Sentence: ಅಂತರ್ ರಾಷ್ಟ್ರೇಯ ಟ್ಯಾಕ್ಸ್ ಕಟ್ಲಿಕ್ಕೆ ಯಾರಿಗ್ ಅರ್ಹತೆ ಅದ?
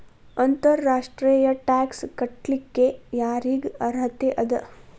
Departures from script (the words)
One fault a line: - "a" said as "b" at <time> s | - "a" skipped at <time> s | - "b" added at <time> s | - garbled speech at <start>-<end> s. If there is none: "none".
none